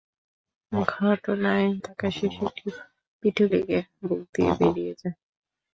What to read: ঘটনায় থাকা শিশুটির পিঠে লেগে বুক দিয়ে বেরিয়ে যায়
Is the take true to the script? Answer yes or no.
yes